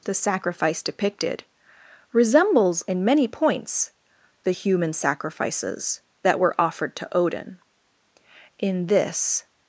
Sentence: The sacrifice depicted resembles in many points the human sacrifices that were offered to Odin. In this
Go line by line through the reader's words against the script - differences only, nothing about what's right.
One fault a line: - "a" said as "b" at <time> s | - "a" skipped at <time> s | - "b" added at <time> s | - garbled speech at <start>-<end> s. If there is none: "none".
none